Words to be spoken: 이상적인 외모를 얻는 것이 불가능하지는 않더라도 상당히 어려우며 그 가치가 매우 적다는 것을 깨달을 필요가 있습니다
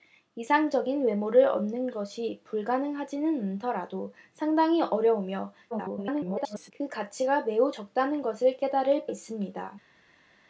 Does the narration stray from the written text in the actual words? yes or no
yes